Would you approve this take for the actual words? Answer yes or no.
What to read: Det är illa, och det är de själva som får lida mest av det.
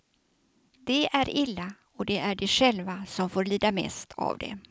yes